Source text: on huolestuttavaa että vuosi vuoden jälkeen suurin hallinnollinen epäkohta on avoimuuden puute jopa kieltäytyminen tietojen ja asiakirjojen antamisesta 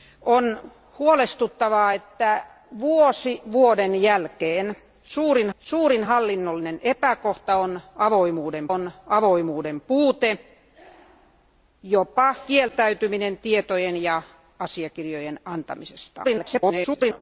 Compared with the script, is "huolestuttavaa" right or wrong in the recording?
right